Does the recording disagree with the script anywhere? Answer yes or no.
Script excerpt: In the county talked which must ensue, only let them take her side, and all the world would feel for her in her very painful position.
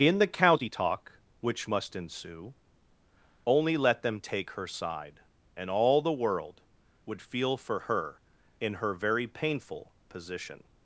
yes